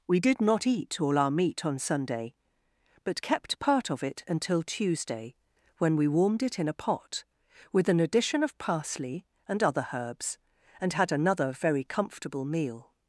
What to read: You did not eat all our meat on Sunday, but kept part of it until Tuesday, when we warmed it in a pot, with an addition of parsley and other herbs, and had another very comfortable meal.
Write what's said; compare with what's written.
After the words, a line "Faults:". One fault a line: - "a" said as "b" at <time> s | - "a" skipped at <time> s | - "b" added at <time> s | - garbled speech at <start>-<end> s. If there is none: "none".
We did not eat all our meat on Sunday, but kept part of it until Tuesday, when we warmed it in a pot, with an addition of parsley and other herbs, and had another very comfortable meal.
Faults:
- "You" said as "We" at 0.1 s